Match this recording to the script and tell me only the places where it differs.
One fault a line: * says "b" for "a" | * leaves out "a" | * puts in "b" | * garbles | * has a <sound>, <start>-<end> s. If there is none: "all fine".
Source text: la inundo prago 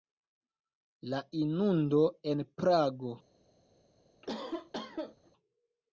* puts in "en"
* has a cough, 4.2-5.3 s